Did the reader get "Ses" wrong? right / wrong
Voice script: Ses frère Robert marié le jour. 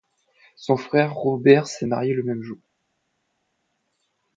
wrong